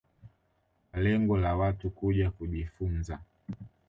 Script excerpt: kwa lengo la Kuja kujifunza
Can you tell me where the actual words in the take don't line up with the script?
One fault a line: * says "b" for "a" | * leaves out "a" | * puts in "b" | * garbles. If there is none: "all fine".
* puts in "Watu"